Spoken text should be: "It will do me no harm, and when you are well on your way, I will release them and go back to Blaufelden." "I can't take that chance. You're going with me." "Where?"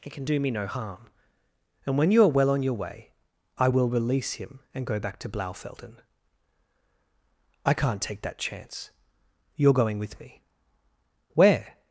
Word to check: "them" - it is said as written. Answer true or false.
false